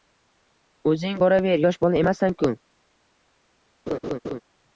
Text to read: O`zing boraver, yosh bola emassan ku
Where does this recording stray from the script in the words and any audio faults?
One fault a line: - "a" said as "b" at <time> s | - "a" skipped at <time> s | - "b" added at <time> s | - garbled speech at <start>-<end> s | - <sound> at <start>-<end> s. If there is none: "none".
- laugh at 3.9-4.4 s